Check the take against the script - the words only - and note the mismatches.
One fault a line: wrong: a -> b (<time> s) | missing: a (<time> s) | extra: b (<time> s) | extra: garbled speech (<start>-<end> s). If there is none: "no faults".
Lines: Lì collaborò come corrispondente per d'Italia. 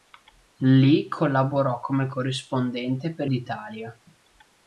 no faults